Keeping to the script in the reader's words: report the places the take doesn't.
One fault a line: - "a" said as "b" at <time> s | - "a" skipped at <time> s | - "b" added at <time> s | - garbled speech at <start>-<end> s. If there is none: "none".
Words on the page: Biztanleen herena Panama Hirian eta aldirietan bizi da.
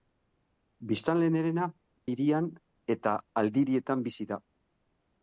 - "Panama" skipped at 1.7 s